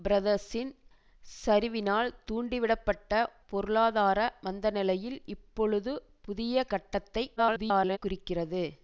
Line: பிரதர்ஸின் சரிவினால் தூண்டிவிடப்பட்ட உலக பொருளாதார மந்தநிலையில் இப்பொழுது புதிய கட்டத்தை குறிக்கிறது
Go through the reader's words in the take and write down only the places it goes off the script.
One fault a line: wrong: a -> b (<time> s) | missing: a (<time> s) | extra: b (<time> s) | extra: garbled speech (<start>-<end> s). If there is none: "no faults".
missing: உலக (3.1 s)
extra: garbled speech (7.4-8.0 s)